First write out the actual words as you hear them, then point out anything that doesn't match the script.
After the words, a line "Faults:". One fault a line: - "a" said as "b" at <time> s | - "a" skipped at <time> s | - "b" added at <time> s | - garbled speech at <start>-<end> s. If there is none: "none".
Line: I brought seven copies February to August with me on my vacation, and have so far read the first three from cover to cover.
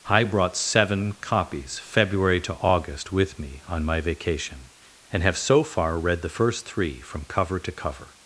I brought seven copies February to August with me on my vacation, and have so far read the first three from cover to cover.
Faults:
none